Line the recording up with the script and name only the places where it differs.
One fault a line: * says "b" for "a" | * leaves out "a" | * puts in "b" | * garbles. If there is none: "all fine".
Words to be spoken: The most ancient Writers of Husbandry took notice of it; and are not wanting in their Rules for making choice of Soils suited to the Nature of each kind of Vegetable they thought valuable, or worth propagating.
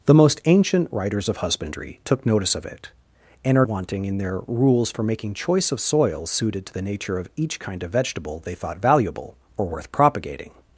* leaves out "not"